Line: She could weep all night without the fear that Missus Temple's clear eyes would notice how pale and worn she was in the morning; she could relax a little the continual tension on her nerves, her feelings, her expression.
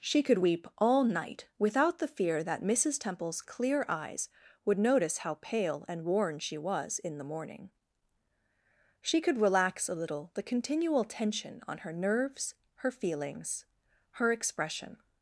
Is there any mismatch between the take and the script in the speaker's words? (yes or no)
no